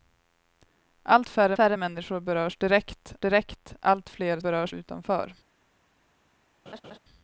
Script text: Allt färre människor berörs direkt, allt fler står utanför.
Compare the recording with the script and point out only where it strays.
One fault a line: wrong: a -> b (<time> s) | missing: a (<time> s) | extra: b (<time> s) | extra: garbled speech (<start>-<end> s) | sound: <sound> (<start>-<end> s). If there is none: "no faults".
extra: färre (1.5 s)
extra: direkt (3.2 s)
wrong: står -> berörs (4.4 s)
sound: laugh (6.7-7.0 s)